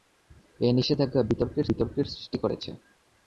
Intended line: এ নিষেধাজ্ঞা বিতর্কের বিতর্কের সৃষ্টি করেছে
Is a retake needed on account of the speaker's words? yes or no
no